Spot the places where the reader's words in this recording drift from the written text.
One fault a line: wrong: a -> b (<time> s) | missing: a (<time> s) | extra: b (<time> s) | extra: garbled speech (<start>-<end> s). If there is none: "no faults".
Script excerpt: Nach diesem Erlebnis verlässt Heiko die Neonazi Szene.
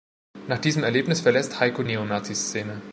missing: die (1.8 s)